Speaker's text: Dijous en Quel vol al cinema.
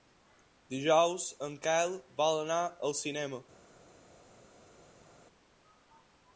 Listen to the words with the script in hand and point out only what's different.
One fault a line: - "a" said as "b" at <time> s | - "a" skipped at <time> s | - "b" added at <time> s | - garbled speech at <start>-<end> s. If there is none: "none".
- "anar" added at 2.5 s